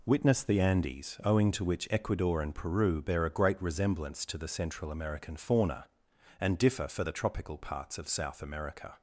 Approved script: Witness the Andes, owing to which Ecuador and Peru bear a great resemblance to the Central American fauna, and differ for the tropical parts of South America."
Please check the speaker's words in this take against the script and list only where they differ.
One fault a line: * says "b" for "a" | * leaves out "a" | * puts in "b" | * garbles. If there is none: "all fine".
all fine